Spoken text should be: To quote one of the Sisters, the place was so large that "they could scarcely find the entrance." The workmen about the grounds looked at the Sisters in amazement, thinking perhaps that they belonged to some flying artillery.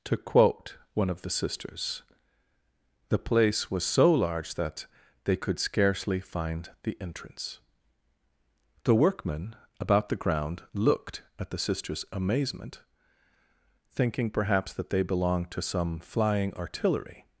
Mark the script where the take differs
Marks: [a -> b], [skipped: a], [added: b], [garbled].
To quote one of the Sisters, the place was so large that "they could scarcely find the entrance." The workmen about the [grounds -> ground] looked at the Sisters [skipped: in] amazement, thinking perhaps that they belonged to some flying artillery.